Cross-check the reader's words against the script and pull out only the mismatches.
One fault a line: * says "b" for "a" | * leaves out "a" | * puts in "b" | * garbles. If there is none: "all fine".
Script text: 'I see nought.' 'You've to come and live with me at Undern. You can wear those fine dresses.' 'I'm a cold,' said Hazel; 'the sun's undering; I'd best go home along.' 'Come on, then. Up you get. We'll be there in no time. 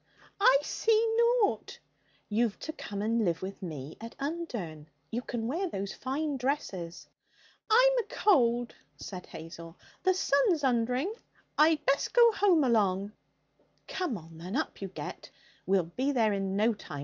all fine